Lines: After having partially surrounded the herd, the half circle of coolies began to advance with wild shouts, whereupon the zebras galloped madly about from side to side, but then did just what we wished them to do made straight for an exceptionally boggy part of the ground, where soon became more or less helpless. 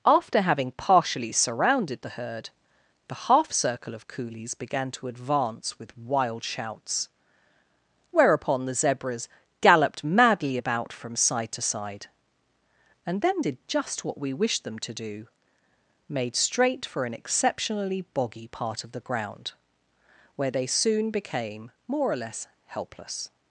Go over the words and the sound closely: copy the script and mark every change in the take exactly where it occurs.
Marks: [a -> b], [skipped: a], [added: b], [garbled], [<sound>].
After having partially surrounded the herd, the half circle of coolies began to advance with wild shouts, whereupon the zebras galloped madly about from side to side, [but -> and] then did just what we wished them to do made straight for an exceptionally boggy part of the ground, where [added: they] soon became more or less helpless.